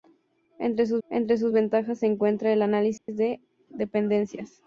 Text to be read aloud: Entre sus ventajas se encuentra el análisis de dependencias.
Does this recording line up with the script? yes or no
no